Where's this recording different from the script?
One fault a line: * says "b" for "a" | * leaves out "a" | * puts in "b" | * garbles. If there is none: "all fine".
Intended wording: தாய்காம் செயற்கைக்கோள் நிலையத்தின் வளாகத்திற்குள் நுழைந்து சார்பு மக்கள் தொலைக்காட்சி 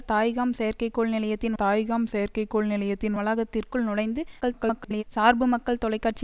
* puts in "தாய்காம் செயற்கைக்கோள் நிலையத்தின்"
* garbles